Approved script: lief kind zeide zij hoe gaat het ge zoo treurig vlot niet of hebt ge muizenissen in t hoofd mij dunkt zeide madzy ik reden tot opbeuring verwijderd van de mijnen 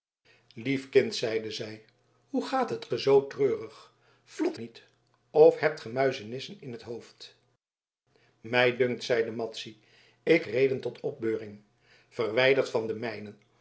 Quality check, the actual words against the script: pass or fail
pass